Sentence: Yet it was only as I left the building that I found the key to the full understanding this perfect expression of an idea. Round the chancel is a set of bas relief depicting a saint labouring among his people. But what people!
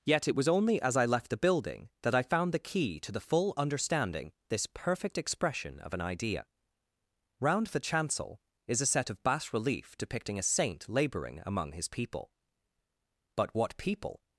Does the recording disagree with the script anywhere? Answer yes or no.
no